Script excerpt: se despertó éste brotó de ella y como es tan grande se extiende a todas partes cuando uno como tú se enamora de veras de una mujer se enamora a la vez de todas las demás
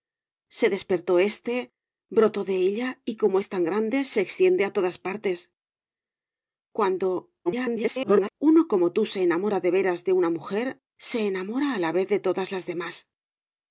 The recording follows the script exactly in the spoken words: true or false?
false